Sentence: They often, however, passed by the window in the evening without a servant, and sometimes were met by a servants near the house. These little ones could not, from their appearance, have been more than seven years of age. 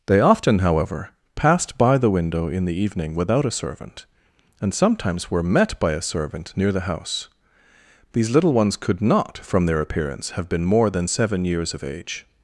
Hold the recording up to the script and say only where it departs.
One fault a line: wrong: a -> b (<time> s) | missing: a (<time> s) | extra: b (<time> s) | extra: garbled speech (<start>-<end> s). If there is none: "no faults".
wrong: servants -> servant (6.0 s)